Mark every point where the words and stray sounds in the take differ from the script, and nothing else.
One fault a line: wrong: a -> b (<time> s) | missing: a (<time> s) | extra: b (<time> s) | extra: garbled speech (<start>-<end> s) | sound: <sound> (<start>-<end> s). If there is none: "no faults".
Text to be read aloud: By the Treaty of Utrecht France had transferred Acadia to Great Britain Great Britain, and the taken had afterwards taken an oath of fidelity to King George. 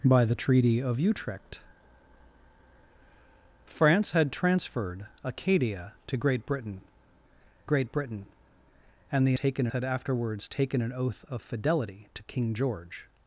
no faults